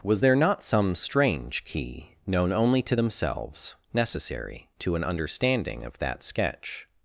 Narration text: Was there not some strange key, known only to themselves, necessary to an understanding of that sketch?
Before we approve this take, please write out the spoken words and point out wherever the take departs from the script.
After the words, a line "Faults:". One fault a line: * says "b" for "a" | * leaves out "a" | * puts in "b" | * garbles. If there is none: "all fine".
Was there not some strange key, known only to themselves, necessary to an understanding of that sketch?
Faults:
all fine